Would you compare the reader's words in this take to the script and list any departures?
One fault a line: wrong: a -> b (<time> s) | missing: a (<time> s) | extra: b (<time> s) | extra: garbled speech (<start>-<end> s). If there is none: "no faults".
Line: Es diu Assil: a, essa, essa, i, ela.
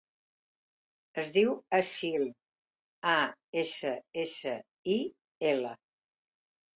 no faults